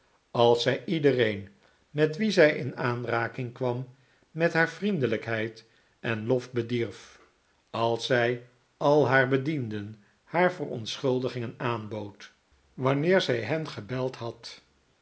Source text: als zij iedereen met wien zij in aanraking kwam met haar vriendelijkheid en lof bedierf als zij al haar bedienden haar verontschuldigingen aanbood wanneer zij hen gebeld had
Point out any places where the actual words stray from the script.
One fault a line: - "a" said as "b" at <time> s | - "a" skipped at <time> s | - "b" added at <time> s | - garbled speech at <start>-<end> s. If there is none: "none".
none